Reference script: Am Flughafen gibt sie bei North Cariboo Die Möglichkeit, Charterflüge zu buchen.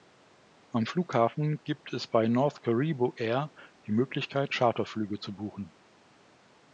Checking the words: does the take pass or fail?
fail